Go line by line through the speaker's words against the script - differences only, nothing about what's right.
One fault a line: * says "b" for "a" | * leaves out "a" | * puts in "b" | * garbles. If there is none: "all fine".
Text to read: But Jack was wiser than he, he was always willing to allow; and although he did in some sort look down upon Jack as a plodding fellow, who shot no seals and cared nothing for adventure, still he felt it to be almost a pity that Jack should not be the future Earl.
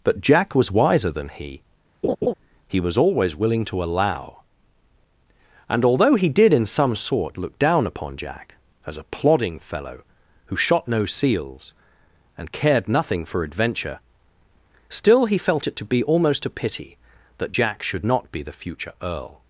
all fine